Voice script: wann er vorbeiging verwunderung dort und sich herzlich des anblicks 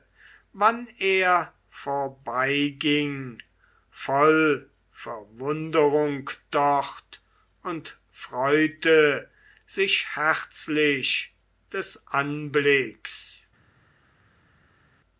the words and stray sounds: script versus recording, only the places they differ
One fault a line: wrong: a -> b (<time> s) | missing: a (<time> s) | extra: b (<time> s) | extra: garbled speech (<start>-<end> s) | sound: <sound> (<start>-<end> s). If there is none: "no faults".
extra: voll (3.9 s)
extra: freute (8.1 s)